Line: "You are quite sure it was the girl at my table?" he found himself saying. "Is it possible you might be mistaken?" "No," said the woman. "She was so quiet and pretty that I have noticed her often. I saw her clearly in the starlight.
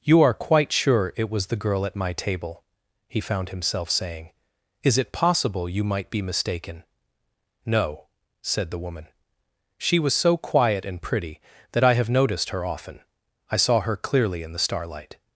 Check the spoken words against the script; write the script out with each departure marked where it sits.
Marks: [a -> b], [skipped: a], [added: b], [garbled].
"You are quite sure it was the girl at my table?" he found himself saying. "Is it possible you might be mistaken?" "No," said the woman. "She was so quiet and pretty that I have noticed her often. I saw her clearly in the starlight.